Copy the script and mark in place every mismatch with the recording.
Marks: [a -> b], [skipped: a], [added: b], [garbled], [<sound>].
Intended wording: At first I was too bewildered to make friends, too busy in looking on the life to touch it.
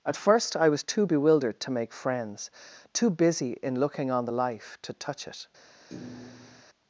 At first I was too bewildered to make friends, too busy in looking on the life to touch it. [thud]